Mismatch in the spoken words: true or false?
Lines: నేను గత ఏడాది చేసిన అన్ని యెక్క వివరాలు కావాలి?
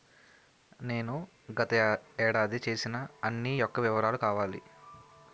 false